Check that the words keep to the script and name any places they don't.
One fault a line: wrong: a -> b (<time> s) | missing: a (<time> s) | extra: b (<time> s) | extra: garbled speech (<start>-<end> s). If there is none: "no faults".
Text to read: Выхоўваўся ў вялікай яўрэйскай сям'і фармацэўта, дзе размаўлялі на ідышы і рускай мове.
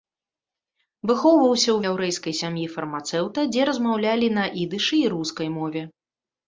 missing: вялікай (1.8 s)